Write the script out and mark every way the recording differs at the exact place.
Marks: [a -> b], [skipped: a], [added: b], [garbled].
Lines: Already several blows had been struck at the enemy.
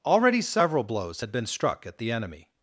Already several blows had been struck at the enemy.